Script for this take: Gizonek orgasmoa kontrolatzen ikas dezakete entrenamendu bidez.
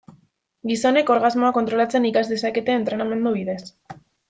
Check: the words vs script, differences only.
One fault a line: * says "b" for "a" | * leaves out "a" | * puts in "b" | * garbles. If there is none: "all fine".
all fine